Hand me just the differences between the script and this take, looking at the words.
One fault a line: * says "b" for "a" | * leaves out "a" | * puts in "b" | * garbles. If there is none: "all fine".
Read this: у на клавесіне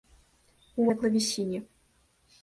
all fine